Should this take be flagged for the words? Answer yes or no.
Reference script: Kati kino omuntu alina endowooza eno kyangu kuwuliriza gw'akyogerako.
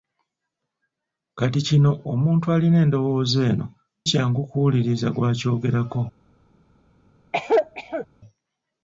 no